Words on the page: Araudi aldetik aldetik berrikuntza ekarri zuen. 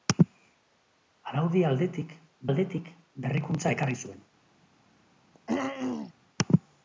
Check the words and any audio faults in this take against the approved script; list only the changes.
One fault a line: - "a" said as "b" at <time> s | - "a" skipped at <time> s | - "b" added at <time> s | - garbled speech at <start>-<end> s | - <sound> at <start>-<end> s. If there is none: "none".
- throat clearing at 5.3-6.1 s